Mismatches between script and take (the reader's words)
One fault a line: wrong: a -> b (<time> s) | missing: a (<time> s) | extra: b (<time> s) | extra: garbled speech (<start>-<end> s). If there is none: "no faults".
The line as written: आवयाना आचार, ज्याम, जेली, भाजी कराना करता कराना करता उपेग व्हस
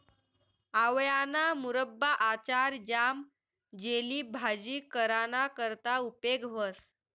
extra: मुरब्बा (1.6 s)
missing: कराना करता (6.0 s)